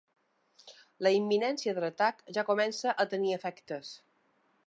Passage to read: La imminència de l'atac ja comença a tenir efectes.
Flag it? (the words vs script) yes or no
no